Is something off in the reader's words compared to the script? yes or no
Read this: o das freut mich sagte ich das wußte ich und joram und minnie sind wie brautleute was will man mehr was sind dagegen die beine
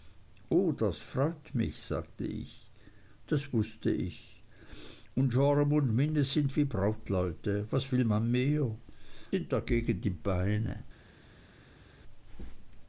yes